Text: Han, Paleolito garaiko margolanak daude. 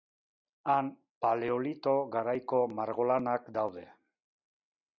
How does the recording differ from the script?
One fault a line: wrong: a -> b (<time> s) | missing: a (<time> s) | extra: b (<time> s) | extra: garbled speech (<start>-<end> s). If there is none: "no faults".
no faults